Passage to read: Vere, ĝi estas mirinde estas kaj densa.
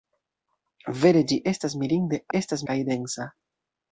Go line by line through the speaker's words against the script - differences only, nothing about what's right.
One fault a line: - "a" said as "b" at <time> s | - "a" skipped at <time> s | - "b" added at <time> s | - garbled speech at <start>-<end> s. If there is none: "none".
none